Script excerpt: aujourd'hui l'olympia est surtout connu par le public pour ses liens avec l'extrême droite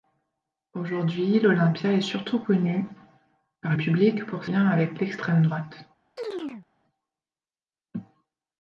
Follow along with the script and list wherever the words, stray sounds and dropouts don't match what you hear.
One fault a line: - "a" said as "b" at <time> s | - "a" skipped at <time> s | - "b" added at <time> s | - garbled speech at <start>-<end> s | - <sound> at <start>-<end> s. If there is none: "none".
- "le" skipped at 3.8 s
- "ses" skipped at 4.5 s
- chirp at 6.2-6.7 s